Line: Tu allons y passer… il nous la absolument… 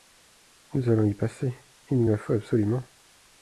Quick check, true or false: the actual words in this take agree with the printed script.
false